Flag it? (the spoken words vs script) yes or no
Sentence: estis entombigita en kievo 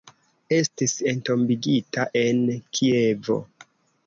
no